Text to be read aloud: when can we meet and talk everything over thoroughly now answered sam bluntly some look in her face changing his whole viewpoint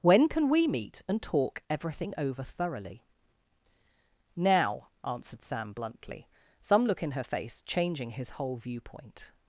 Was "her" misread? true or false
false